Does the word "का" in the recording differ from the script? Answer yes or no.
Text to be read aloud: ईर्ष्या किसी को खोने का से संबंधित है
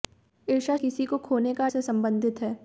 no